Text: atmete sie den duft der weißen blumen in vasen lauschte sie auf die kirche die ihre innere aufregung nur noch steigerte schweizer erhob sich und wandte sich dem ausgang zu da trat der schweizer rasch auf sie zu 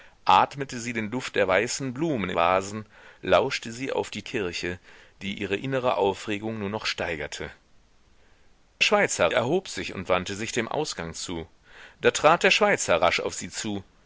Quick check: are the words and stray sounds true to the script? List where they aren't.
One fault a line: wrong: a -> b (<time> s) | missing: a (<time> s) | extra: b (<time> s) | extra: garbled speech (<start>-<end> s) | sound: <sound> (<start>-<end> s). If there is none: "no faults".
no faults